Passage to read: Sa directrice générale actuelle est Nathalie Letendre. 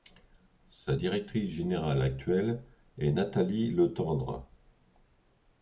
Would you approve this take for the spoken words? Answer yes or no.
yes